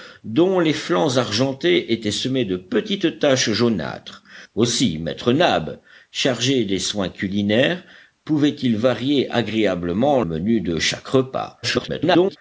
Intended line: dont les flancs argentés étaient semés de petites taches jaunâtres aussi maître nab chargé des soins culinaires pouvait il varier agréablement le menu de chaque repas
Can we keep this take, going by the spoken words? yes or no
no